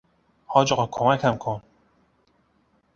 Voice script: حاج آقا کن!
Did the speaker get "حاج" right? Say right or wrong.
right